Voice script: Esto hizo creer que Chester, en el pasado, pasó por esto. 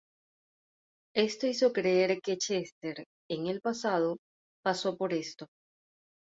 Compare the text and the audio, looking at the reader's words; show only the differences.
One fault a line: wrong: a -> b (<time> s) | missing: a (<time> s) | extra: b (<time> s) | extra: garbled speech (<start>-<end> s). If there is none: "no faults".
no faults